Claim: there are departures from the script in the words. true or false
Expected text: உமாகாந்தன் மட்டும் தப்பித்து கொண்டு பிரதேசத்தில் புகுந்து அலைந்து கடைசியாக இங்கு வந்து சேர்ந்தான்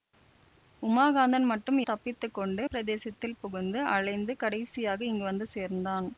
false